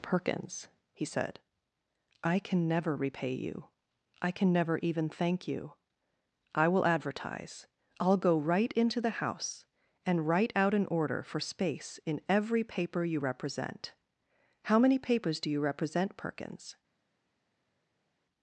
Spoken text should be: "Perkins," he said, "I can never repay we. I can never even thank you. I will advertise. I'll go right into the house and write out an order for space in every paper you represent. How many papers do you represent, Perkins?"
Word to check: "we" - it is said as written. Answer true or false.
false